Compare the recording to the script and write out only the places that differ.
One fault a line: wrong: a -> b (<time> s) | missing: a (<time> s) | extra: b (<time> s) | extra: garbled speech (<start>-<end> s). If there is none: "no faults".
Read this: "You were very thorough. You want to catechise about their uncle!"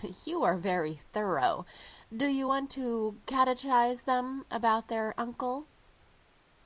wrong: were -> are (0.4 s)
extra: Do (2.1 s)
extra: them (4.0 s)